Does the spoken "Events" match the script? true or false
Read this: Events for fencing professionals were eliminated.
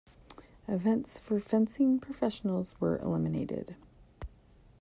true